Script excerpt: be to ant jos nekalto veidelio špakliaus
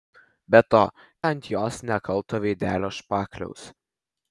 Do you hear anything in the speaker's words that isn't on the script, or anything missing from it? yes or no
no